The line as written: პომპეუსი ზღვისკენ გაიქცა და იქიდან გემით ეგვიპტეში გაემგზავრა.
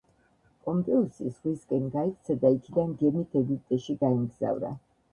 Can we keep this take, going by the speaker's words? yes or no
yes